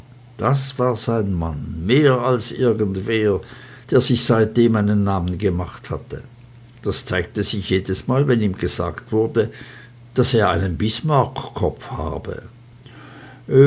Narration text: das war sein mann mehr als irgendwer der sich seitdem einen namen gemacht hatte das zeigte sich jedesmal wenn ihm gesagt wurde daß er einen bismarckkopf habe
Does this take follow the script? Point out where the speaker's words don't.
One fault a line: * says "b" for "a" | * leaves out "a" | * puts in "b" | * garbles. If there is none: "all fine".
all fine